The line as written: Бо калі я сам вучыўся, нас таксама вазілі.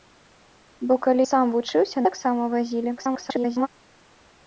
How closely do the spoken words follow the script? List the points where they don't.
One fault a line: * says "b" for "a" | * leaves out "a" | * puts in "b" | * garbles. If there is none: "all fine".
* leaves out "я"
* leaves out "нас"
* garbles